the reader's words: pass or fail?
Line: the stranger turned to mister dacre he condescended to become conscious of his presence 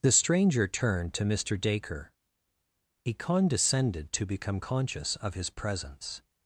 pass